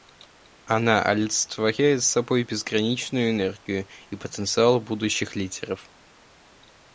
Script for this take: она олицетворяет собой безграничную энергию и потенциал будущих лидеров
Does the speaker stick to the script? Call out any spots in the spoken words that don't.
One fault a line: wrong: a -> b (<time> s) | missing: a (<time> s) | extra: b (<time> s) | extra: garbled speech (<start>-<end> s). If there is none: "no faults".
no faults